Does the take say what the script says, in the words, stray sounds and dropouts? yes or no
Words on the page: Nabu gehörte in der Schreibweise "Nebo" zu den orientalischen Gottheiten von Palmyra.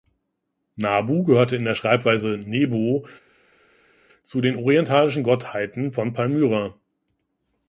yes